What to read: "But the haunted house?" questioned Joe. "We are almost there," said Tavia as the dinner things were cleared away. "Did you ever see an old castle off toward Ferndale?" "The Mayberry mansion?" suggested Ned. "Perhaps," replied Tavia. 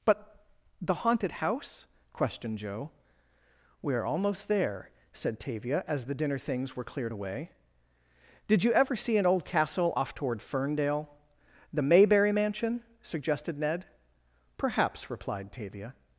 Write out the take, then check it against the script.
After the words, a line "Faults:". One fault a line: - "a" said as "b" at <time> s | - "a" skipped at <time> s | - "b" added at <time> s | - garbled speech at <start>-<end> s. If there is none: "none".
"But the haunted house?" questioned Joe. "We are almost there," said Tavia as the dinner things were cleared away. "Did you ever see an old castle off toward Ferndale?" "The Mayberry mansion?" suggested Ned. "Perhaps," replied Tavia.
Faults:
none